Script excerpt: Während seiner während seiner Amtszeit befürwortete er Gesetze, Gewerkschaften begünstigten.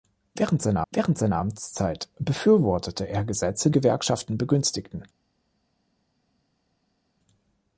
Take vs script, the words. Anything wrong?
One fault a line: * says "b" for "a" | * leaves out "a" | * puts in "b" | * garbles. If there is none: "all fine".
all fine